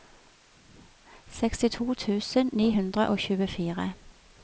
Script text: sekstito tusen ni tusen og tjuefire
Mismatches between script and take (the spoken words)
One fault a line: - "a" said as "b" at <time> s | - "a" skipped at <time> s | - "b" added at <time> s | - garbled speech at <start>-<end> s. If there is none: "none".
- "tusen" said as "hundre" at 2.8 s